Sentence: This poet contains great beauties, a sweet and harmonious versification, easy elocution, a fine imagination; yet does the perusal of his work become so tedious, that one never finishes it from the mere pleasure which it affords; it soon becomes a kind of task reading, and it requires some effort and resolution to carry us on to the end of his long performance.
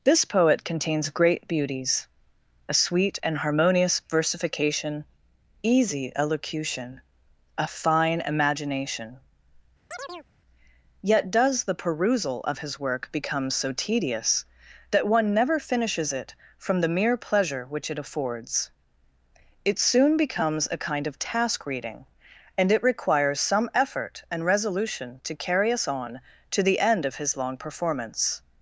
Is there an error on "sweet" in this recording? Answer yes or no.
no